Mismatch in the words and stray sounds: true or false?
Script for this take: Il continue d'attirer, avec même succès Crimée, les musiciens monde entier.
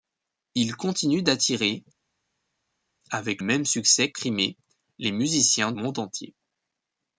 false